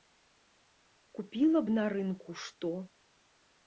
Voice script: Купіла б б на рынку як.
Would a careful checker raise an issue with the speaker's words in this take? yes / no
yes